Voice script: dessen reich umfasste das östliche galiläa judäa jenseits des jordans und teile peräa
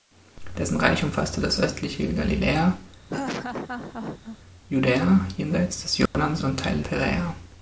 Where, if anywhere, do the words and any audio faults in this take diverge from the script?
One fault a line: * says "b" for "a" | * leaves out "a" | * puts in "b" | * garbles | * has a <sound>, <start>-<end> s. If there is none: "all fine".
* has a laugh, 3.1-4.4 s
* has a dropout, 6.1-6.1 s